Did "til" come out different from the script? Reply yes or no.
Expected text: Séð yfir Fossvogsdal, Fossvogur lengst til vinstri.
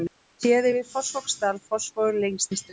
yes